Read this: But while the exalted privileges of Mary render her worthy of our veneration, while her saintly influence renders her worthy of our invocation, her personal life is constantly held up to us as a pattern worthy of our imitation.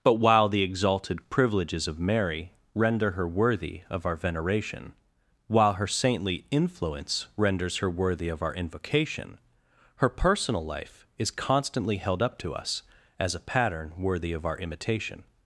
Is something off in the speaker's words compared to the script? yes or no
no